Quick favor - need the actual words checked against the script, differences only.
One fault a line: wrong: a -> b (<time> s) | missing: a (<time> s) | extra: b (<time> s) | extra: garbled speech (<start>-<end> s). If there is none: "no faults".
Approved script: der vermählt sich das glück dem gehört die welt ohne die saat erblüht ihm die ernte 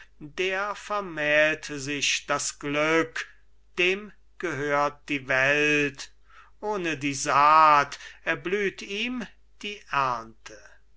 no faults